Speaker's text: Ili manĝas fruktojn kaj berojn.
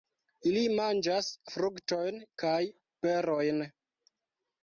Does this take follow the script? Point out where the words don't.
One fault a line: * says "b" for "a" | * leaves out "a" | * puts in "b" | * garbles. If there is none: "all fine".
all fine